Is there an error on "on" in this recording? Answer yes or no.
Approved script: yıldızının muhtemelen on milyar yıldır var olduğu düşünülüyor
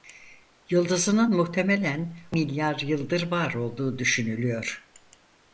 yes